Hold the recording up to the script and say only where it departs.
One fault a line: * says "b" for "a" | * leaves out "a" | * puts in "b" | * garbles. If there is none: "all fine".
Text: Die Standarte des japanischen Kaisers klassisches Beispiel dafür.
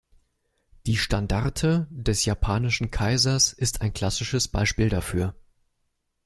* puts in "ist ein"